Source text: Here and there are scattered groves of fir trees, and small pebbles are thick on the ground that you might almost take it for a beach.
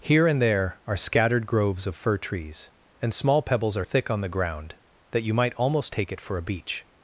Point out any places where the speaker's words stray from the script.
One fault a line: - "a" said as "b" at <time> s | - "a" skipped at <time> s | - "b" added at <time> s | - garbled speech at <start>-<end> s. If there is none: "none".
none